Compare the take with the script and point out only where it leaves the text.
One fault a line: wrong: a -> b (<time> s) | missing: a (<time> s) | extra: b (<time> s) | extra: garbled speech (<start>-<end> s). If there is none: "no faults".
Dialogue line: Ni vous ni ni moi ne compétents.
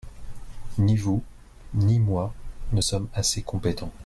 missing: ni (2.0 s)
extra: sommes assez (2.8 s)